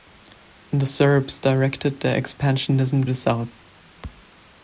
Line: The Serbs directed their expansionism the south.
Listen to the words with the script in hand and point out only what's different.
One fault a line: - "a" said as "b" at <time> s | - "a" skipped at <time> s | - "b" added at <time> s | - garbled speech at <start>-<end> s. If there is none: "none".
none